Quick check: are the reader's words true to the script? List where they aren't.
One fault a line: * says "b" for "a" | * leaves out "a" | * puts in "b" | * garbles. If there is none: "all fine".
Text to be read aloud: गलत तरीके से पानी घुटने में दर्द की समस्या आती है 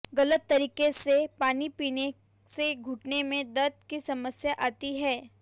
* puts in "पीने से"